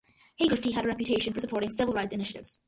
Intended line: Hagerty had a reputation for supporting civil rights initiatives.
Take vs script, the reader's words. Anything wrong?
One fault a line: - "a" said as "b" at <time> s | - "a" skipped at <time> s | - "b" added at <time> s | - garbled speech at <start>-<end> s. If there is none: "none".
none